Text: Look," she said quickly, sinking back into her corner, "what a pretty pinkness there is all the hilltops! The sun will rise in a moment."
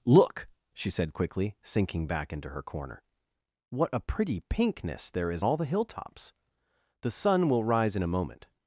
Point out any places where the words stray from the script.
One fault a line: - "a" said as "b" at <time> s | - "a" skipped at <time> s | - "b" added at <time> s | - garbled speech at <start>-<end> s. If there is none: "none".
none